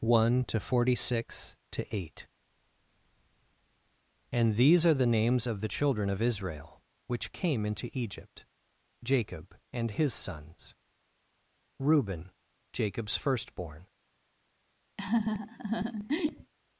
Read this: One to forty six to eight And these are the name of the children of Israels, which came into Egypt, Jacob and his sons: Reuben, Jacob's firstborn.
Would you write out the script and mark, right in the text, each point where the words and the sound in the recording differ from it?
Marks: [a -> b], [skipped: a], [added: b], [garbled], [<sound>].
One to forty six to eight And these are the [name -> names] of the children of [Israels, -> Israel] which came into Egypt, Jacob and his sons: Reuben, Jacob's firstborn. [laugh]